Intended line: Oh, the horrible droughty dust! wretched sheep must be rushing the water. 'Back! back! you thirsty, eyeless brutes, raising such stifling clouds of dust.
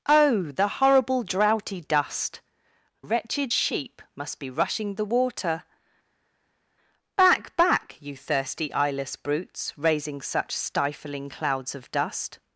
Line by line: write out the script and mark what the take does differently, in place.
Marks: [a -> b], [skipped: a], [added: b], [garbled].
Oh, the horrible droughty dust! wretched sheep must be rushing the water. 'Back! back! you thirsty, eyeless brutes, raising such stifling clouds of dust.